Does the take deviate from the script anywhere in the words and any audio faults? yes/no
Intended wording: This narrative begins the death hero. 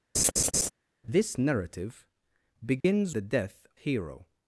yes